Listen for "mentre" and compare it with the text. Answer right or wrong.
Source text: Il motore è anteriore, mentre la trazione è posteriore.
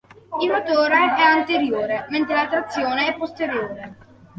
right